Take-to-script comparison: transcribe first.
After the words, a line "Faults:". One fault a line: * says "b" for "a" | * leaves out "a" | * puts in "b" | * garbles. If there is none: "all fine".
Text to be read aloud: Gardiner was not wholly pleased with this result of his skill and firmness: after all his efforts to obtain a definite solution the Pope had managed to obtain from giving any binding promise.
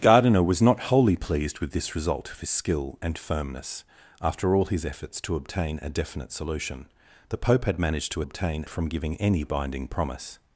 Gardiner was not wholly pleased with this result of his skill and firmness: after all his efforts to obtain a definite solution the Pope had managed to obtain from giving any binding promise.
Faults:
all fine